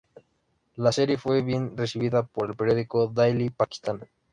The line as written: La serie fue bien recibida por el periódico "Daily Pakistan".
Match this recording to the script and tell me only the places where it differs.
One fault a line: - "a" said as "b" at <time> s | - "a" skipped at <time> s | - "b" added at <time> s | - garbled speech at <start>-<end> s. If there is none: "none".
none